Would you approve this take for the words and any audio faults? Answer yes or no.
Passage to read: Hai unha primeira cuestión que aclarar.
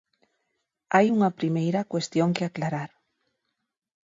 yes